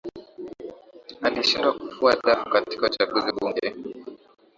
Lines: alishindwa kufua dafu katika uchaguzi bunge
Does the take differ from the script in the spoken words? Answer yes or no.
no